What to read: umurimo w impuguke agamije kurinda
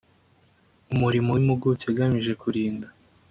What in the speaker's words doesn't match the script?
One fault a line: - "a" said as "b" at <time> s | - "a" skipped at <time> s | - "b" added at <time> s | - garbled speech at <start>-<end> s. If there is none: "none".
none